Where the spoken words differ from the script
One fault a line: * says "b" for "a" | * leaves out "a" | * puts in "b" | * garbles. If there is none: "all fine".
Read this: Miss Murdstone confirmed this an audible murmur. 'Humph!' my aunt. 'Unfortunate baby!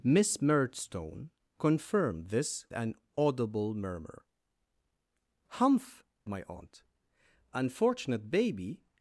all fine